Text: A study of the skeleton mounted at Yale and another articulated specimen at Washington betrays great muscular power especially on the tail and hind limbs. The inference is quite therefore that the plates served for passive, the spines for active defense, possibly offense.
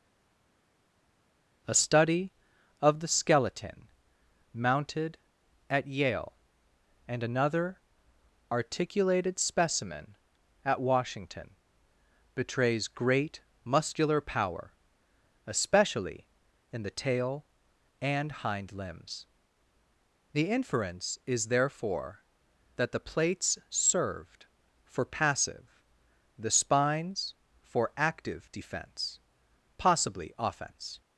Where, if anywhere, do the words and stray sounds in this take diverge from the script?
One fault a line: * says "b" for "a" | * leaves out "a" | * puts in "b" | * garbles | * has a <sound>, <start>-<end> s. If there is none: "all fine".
* says "in" for "on"
* leaves out "quite"